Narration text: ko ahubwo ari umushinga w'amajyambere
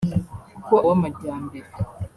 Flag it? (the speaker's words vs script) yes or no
yes